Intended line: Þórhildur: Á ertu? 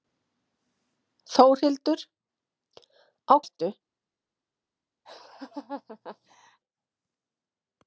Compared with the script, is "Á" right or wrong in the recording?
right